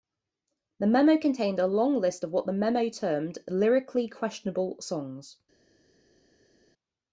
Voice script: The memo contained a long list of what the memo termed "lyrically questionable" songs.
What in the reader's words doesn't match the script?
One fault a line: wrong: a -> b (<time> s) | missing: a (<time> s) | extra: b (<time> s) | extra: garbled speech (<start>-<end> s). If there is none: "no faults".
no faults